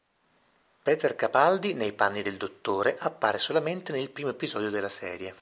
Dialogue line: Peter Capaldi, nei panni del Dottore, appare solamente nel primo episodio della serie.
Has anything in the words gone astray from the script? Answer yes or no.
no